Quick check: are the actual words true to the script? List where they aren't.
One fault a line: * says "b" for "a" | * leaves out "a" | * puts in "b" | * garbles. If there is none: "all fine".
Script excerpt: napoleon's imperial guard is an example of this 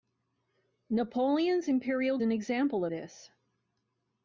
* leaves out "guard is"
* leaves out "of"